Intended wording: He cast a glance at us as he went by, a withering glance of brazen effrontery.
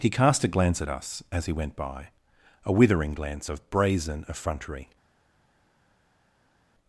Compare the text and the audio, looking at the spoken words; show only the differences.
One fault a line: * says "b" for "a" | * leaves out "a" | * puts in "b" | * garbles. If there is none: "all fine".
all fine